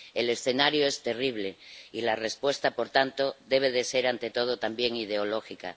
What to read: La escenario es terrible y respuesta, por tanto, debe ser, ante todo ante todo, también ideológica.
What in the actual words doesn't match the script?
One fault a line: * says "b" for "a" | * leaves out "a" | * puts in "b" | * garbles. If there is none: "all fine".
* says "El" for "La"
* puts in "la"
* leaves out "ante todo"